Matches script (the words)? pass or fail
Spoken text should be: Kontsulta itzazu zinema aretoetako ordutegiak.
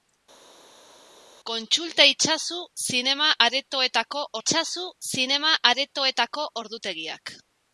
fail